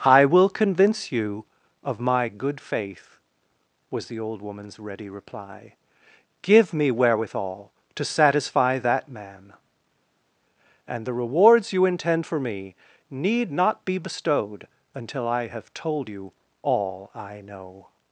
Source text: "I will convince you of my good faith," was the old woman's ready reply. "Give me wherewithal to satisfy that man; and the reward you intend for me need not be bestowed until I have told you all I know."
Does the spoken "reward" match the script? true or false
false